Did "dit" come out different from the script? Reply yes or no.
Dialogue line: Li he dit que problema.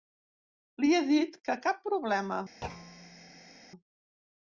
no